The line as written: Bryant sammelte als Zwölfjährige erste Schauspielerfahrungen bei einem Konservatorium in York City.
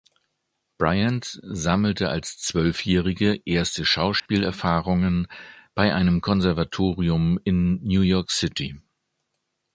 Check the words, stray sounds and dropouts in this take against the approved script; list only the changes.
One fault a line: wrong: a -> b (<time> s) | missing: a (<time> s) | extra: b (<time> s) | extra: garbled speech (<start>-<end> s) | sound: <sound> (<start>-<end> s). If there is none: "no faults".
sound: dropout (4.2-4.3 s)
extra: New (7.8 s)